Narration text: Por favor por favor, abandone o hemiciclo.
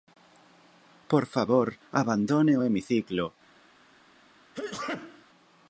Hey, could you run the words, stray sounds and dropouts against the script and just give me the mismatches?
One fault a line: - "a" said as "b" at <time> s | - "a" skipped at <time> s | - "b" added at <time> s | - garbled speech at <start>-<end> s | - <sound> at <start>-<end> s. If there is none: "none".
- "por favor" skipped at 1.7 s
- sneeze at 4.5-5.3 s